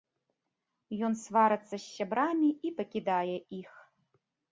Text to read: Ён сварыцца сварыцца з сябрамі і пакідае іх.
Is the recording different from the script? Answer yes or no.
yes